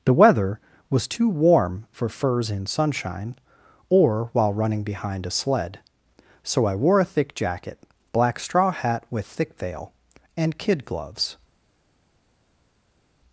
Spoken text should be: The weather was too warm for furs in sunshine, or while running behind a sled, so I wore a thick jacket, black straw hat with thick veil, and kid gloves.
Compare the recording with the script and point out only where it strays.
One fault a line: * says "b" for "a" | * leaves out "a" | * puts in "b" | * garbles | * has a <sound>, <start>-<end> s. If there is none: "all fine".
all fine